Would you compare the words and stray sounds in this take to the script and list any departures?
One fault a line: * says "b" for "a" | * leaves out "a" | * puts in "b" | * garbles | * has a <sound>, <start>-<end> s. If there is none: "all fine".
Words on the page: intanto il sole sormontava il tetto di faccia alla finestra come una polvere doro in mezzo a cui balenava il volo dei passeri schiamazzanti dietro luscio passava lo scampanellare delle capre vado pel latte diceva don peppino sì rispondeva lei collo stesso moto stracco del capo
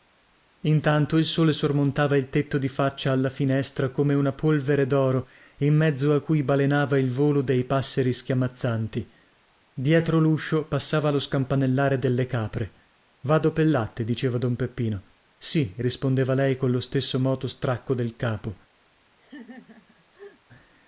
* has a laugh, 19.2-20.4 s